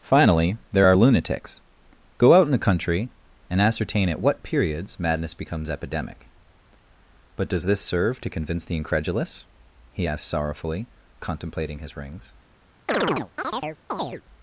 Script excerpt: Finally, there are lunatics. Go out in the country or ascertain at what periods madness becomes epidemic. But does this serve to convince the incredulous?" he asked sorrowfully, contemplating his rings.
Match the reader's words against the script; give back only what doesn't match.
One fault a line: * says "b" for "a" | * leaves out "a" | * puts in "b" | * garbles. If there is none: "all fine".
* says "and" for "or"